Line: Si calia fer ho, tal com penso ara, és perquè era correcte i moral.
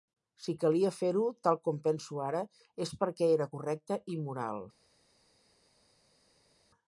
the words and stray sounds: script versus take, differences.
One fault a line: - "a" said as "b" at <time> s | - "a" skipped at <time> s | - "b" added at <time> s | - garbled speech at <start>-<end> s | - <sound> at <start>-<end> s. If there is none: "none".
none